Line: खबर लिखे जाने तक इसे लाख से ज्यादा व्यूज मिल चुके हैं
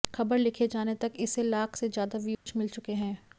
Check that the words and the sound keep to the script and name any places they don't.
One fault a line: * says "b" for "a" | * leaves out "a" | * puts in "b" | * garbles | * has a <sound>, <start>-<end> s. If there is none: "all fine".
* has a dropout, 2.3-2.5 s